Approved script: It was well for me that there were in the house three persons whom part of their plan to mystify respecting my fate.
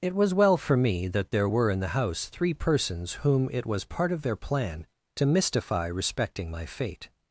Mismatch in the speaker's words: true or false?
true